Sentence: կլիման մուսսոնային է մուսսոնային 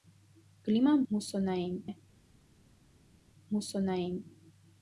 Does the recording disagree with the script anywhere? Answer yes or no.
no